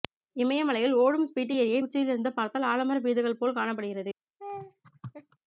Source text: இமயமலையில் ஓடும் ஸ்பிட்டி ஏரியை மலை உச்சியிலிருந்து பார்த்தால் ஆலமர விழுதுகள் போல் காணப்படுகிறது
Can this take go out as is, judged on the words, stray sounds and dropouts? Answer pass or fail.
fail